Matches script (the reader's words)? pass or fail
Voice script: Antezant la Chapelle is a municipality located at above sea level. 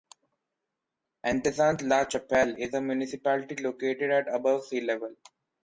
pass